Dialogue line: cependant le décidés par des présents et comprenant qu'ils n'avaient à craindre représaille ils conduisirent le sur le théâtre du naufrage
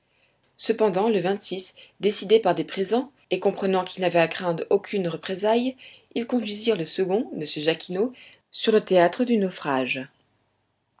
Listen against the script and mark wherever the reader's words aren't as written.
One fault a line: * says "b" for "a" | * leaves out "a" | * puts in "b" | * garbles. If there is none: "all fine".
* puts in "aucune"
* puts in "second m jacquinot"